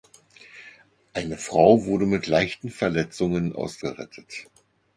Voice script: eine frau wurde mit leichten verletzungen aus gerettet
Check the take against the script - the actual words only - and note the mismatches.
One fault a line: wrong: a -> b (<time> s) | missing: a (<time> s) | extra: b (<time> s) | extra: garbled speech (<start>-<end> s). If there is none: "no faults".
no faults